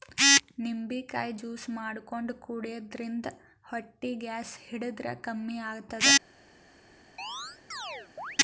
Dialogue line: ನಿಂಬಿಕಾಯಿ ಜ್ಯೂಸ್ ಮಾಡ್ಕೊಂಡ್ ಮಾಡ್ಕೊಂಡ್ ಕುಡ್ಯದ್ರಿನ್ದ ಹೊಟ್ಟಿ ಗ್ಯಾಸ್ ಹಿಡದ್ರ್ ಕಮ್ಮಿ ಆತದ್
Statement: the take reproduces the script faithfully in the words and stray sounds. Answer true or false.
false